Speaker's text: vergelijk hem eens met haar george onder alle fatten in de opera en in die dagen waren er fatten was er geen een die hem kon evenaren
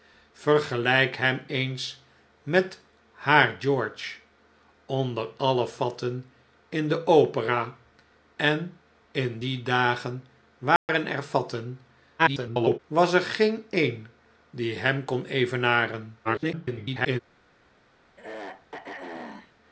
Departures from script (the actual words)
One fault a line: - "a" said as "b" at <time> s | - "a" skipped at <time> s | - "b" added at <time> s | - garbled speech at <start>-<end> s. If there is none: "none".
- garbled speech at 12.2-12.8 s
- garbled speech at 16.2-17.2 s